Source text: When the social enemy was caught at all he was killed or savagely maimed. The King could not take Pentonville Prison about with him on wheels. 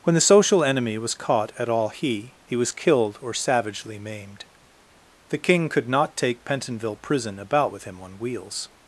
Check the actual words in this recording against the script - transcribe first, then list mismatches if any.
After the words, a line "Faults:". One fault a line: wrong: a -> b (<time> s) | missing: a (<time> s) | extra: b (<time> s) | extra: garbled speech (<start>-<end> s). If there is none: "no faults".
When the social enemy was caught at all he he was killed or savagely maimed. The King could not take Pentonville Prison about with him on wheels.
Faults:
extra: he (2.4 s)